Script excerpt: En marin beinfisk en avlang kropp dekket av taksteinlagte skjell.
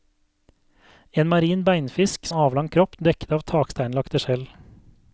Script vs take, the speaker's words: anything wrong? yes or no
no